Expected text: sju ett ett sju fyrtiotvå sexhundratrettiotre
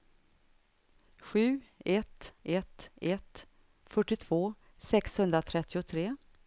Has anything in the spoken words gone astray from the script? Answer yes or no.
yes